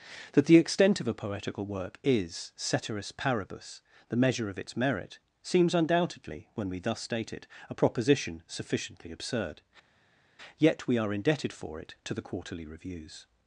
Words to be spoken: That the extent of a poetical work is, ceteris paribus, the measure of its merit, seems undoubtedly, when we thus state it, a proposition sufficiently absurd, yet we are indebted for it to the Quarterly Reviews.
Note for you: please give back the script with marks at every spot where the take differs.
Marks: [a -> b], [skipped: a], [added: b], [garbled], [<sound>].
That the extent of a poetical work is, ceteris paribus, the measure of its merit, seems undoubtedly, when we thus state it, a proposition sufficiently absurd, yet we are indebted for it to the Quarterly Reviews.